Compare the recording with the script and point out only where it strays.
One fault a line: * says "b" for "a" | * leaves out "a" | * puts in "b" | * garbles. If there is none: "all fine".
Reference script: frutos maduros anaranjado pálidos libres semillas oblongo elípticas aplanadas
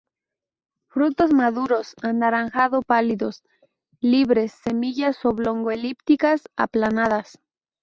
all fine